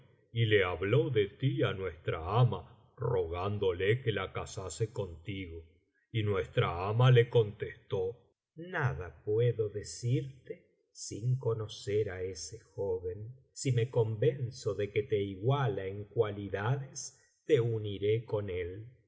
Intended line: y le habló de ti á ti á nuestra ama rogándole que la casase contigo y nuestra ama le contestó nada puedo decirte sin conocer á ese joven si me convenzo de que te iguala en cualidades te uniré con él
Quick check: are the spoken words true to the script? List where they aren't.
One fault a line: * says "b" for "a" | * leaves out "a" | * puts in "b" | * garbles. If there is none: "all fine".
* leaves out "ti á"